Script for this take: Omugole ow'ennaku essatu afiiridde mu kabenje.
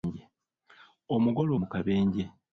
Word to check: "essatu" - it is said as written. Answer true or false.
false